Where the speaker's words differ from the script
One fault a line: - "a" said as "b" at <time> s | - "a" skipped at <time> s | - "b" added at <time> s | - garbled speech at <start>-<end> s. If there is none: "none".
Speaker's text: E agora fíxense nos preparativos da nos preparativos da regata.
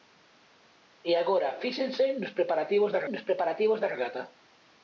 none